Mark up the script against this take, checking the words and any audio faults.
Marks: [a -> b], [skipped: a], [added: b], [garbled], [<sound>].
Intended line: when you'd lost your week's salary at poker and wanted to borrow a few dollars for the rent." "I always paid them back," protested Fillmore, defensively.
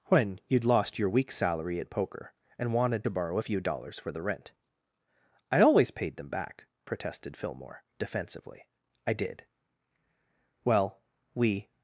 when you'd lost your week's salary at poker and wanted to borrow a few dollars for the rent." "I always paid them back," protested Fillmore, defensively. [added: I did Well we]